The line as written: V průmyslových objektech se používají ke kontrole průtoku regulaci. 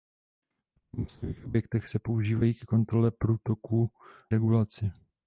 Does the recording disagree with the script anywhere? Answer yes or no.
no